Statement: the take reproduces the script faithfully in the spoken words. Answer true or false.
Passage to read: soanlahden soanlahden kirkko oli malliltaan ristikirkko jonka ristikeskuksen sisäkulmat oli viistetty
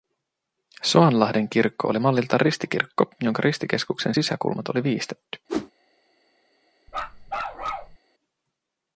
false